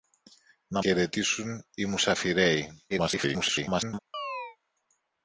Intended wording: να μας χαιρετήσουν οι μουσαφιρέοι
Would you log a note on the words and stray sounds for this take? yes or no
yes